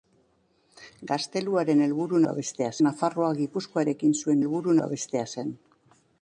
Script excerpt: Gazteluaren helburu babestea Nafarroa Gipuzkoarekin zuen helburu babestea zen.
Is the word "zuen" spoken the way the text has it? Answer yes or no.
yes